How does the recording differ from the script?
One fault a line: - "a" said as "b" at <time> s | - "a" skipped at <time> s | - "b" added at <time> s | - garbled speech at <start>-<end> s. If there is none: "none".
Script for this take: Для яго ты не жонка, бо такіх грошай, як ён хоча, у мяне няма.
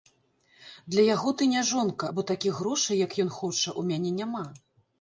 none